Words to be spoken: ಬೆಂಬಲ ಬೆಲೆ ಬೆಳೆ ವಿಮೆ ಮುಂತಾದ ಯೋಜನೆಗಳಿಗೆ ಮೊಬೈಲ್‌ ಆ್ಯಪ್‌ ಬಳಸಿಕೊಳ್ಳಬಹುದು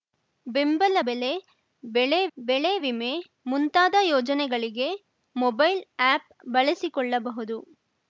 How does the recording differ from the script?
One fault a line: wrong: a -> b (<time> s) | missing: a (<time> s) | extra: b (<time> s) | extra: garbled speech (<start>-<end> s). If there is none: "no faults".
extra: ಬೆಳೆ (2.4 s)